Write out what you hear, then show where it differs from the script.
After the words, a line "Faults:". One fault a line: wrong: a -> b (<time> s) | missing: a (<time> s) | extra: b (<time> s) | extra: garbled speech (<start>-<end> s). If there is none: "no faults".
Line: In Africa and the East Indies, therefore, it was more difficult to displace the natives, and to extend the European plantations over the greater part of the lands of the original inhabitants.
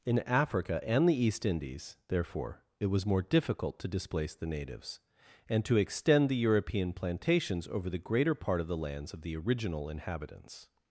In Africa and the East Indies, therefore, it was more difficult to displace the natives, and to extend the European plantations over the greater part of the lands of the original inhabitants.
Faults:
no faults